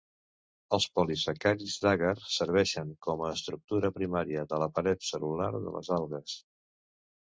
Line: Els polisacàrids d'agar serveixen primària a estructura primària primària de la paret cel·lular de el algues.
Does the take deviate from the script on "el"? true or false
true